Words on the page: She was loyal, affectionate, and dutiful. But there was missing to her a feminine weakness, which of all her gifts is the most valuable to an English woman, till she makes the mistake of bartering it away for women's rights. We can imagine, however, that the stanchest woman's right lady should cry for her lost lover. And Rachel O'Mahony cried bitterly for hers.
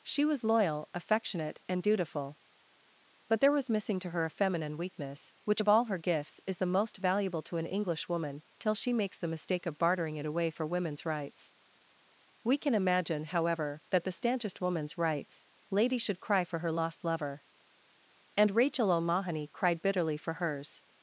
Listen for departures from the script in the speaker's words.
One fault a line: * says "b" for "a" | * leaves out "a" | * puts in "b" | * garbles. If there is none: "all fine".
* says "rights" for "right"